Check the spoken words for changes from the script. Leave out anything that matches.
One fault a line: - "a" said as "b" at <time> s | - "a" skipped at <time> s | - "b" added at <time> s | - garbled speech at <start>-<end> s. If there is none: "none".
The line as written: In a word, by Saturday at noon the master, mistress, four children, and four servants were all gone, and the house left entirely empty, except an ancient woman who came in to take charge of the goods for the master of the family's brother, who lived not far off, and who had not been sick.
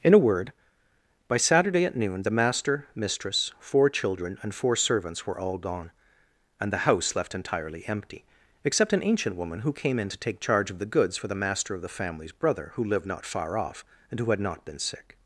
none